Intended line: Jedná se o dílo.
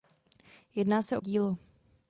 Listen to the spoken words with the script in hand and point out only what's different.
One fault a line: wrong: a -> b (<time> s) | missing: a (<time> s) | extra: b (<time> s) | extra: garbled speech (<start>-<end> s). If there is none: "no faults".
no faults